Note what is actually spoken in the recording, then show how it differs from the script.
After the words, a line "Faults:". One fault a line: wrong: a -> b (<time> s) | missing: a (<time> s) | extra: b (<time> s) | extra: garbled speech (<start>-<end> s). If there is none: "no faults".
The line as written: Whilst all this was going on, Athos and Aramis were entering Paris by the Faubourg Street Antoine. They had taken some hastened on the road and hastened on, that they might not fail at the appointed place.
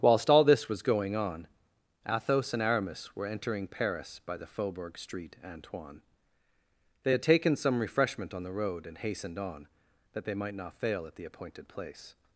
Whilst all this was going on, Athos and Aramis were entering Paris by the Faubourg Street Antoine. They had taken some refreshment on the road and hastened on, that they might not fail at the appointed place.
Faults:
wrong: hastened -> refreshment (7.8 s)